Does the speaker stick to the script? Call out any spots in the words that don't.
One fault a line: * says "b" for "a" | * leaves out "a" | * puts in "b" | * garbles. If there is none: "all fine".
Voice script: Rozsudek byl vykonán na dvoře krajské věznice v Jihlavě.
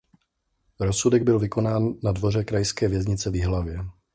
all fine